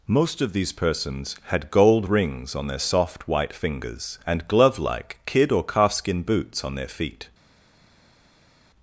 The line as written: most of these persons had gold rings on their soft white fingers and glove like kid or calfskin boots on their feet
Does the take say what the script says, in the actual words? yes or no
yes